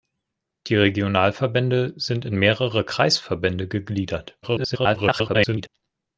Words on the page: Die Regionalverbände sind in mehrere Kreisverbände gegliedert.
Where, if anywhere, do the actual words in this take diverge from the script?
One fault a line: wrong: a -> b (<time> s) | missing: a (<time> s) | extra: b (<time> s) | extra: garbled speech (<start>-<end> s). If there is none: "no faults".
extra: garbled speech (4.4-5.7 s)